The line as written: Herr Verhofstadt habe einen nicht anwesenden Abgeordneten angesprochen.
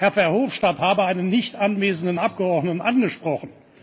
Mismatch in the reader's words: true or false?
false